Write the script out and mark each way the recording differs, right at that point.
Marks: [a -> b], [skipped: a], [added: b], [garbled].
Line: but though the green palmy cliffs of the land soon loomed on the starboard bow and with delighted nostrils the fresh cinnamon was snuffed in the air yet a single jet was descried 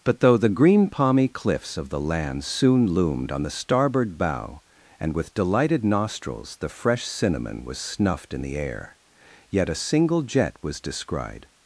but though the green palmy cliffs of the land soon loomed on the starboard bow and with delighted nostrils the fresh cinnamon was snuffed in the air yet a single jet was descried